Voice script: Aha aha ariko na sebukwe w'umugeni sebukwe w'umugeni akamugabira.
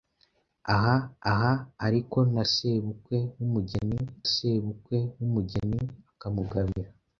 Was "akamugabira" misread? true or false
false